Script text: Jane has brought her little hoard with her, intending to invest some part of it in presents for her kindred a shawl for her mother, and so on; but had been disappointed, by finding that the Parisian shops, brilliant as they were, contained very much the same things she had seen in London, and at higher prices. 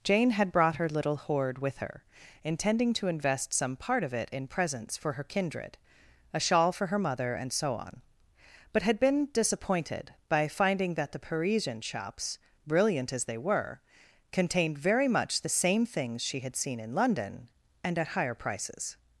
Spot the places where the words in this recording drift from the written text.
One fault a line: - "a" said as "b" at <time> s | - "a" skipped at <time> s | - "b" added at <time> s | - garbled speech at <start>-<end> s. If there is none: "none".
- "has" said as "had" at 0.3 s